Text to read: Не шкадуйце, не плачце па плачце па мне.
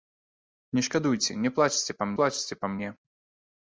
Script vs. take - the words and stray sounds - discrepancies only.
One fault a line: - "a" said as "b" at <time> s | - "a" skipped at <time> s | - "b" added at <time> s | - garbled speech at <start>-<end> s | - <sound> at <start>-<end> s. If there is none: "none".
none